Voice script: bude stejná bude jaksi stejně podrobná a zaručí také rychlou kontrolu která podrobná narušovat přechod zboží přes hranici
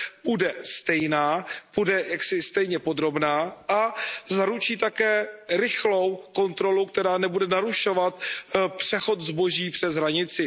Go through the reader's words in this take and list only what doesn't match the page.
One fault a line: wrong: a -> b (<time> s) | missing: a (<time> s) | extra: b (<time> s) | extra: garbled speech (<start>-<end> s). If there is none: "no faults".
wrong: podrobná -> nebude (7.2 s)